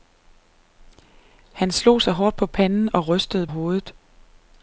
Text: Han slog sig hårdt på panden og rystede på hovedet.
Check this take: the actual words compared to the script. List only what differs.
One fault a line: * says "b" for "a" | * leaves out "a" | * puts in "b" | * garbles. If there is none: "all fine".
* leaves out "på"